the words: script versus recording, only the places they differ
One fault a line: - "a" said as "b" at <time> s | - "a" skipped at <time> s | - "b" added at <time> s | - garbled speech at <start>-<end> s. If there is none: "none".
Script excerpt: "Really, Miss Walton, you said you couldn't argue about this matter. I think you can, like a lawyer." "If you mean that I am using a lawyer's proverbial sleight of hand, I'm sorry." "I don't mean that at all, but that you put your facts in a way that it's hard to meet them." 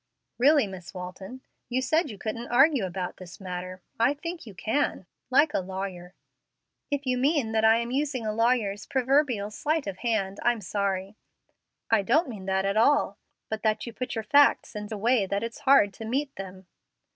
none